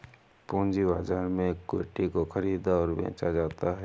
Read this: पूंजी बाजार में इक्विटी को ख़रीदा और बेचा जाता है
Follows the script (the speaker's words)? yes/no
yes